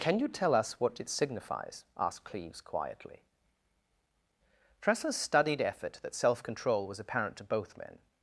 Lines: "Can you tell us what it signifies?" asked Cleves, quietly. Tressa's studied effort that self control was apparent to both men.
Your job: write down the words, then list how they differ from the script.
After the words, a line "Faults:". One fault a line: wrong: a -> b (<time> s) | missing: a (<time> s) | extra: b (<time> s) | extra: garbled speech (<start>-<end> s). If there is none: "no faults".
"Can you tell us what it signifies?" asked Cleves, quietly. Tressa's studied effort that self control was apparent to both men.
Faults:
no faults